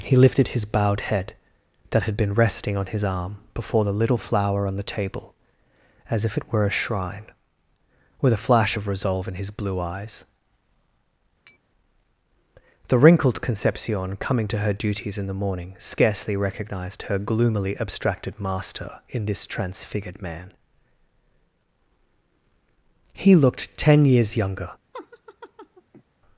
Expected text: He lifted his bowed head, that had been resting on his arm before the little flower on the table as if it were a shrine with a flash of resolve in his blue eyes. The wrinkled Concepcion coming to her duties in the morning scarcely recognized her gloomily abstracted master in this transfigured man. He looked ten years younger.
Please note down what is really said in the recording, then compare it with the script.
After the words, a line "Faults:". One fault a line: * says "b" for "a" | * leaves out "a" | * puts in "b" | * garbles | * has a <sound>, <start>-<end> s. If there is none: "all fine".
He lifted his bowed head, that had been resting on his arm before the little flower on the table as if it were a shrine with a flash of resolve in his blue eyes. The wrinkled Concepcion coming to her duties in the morning scarcely recognized her gloomily abstracted master in this transfigured man. He looked ten years younger.
Faults:
* has a tap, 11.5-11.6 s
* has a laugh, 24.9-26.0 s